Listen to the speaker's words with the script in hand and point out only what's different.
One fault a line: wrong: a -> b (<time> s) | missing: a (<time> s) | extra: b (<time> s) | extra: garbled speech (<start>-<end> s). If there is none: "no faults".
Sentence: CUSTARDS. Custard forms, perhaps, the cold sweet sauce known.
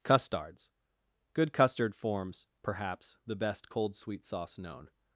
extra: Good (1.3 s)
extra: best (3.4 s)